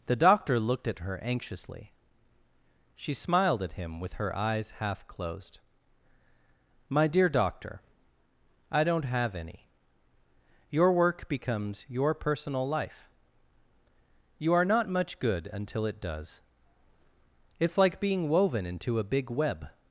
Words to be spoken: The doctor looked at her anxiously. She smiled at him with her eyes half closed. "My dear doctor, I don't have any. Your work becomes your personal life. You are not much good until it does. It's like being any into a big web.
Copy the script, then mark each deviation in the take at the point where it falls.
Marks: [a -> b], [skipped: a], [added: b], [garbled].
The doctor looked at her anxiously. She smiled at him with her eyes half closed. "My dear doctor, I don't have any. Your work becomes your personal life. You are not much good until it does. It's like being [any -> woven] into a big web.